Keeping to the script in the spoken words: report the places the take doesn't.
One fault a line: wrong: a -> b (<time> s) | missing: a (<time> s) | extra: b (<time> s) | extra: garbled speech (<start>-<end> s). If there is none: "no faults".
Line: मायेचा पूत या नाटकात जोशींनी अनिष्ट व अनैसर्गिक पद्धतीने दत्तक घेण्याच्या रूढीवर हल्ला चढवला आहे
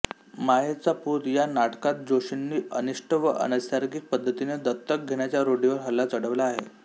no faults